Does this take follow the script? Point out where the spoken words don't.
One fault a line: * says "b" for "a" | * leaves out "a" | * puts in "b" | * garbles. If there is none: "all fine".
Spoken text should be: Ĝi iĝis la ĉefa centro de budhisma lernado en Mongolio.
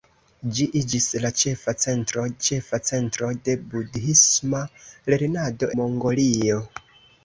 * puts in "ĉefa centro"
* leaves out "en"